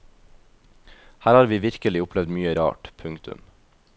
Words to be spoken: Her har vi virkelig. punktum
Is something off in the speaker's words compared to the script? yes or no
yes